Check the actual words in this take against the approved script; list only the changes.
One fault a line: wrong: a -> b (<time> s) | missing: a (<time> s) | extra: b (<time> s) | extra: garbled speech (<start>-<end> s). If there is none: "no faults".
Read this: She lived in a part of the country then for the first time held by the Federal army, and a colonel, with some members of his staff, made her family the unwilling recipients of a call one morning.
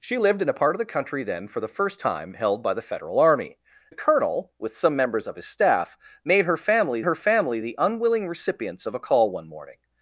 missing: and (3.6 s)
extra: her family (7.0 s)